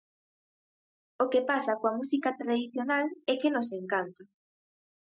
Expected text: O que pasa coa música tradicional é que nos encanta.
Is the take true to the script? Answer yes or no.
yes